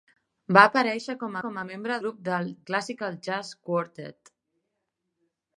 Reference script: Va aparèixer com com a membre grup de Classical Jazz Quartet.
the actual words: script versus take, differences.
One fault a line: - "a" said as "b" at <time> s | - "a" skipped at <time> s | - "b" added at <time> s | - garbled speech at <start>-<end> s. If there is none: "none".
none